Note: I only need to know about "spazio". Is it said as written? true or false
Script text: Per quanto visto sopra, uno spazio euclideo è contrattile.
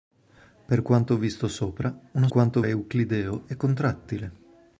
false